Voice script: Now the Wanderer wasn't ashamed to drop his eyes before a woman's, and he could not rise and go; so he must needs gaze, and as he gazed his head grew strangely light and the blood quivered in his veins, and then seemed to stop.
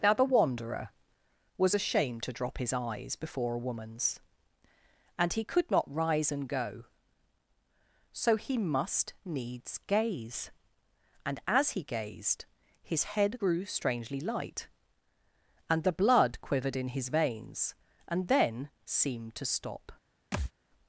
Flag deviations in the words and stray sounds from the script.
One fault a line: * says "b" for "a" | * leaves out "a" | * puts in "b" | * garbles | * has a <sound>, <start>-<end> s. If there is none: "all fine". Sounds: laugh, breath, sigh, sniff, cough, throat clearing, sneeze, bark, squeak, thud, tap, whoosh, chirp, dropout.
* says "was" for "wasn't"
* has a thud, 20.3-20.5 s